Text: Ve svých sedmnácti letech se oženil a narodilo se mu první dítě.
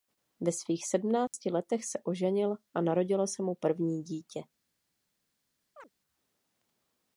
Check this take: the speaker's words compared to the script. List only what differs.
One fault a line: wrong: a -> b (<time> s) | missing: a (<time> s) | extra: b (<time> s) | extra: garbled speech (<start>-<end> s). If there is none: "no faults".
no faults